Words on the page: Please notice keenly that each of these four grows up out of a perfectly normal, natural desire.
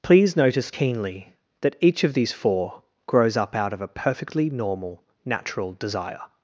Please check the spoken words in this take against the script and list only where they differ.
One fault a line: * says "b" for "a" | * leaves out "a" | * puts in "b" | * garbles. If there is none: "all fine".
all fine